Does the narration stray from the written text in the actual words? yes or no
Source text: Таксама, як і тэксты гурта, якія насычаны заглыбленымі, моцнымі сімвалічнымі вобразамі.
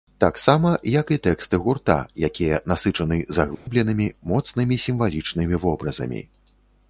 no